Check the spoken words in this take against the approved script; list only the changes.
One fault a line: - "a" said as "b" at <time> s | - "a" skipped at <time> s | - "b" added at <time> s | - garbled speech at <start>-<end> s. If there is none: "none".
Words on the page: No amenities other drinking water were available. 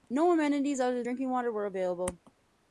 none